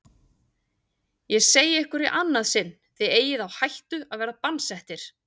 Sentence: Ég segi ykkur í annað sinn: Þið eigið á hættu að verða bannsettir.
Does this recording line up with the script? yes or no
yes